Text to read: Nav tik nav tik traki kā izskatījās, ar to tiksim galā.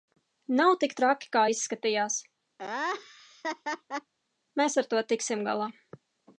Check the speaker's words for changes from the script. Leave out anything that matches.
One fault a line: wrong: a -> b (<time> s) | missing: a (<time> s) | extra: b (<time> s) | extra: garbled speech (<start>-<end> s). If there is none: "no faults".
missing: nav tik (0.9 s)
extra: mēs (4.6 s)